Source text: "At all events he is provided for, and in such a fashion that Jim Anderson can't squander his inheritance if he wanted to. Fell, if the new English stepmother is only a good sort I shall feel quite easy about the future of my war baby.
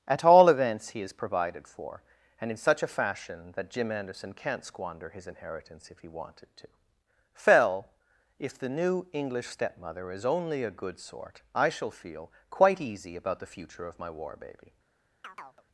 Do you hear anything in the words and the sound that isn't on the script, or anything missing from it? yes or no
yes